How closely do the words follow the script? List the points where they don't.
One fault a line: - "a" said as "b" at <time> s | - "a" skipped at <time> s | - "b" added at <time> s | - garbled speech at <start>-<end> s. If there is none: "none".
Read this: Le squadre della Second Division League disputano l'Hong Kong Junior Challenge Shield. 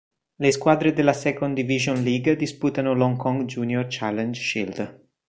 none